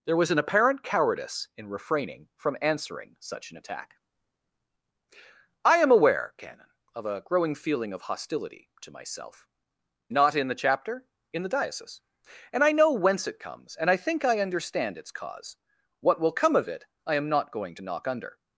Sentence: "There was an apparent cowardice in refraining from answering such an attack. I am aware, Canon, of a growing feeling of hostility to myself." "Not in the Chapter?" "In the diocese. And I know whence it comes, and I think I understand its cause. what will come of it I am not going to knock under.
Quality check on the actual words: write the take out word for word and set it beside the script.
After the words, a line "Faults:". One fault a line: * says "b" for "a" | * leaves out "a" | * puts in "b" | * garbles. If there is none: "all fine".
"There was an apparent cowardice in refraining from answering such an attack. I am aware, Canon, of a growing feeling of hostility to myself." "Not in the Chapter?" "In the diocese. And I know whence it comes, and I think I understand its cause. what will come of it I am not going to knock under.
Faults:
all fine